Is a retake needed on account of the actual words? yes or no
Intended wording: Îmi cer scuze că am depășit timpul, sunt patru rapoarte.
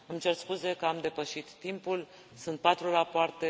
no